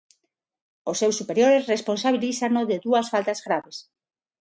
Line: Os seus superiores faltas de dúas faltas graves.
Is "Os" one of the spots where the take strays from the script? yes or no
no